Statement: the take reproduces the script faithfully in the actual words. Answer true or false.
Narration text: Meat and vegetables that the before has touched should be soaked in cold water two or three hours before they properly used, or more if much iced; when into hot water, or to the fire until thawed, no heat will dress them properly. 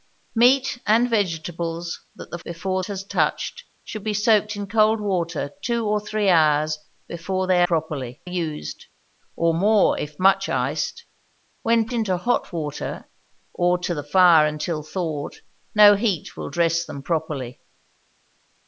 true